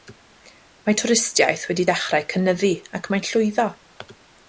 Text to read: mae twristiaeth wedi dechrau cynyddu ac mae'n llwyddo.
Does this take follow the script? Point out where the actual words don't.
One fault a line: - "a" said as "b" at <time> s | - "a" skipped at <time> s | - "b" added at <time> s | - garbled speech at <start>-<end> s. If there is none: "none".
none